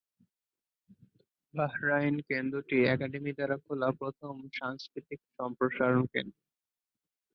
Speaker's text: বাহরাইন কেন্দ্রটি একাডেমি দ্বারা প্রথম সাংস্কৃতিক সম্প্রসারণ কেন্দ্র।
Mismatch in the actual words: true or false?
true